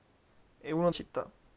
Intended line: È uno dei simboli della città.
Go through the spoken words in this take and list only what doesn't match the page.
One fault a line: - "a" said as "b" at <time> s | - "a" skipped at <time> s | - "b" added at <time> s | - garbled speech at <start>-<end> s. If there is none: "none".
- "dei simboli della" skipped at 0.9 s